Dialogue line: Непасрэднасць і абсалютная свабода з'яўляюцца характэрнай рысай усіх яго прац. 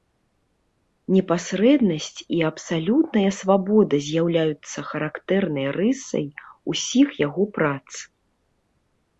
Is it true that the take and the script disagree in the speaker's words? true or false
false